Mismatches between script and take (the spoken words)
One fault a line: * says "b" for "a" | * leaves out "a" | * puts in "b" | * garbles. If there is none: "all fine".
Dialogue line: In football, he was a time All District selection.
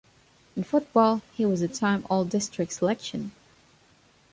all fine